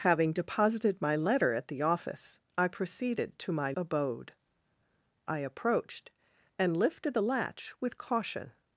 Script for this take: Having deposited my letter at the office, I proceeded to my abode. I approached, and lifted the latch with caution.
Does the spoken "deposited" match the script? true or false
true